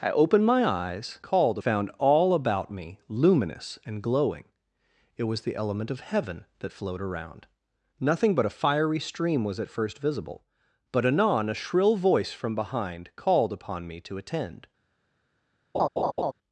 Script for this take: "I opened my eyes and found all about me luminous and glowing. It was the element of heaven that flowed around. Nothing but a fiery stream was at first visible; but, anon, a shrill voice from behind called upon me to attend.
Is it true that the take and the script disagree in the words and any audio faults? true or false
true